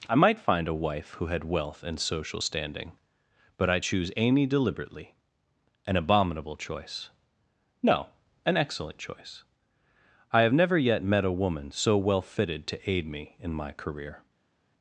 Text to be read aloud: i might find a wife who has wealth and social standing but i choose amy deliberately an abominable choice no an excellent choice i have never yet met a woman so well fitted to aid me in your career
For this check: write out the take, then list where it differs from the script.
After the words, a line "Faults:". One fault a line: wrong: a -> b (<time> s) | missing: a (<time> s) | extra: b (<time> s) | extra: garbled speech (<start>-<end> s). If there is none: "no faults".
i might find a wife who had wealth and social standing but i choose amy deliberately an abominable choice no an excellent choice i have never yet met a woman so well fitted to aid me in my career
Faults:
wrong: has -> had (1.3 s)
wrong: your -> my (13.5 s)